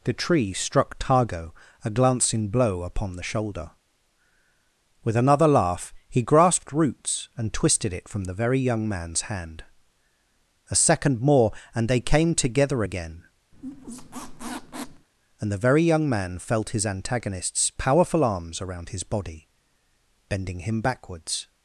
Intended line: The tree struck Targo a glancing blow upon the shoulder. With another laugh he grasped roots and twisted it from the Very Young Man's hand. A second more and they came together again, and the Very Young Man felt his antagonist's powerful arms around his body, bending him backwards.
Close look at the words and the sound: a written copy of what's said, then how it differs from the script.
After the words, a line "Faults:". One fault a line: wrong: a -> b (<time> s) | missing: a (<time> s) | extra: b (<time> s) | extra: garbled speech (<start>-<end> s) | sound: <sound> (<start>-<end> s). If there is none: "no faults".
The tree struck Targo a glancing blow upon the shoulder. With another laugh he grasped roots and twisted it from the Very Young Man's hand. A second more and they came together again, and the Very Young Man felt his antagonist's powerful arms around his body, bending him backwards.
Faults:
sound: squeak (13.5-15.1 s)